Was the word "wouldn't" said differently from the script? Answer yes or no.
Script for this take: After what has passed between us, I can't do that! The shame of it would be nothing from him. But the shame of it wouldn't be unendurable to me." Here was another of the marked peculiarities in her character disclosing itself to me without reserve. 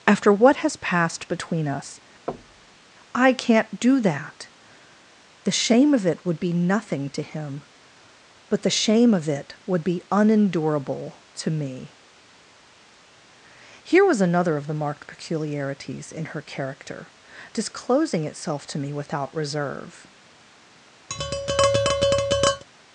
yes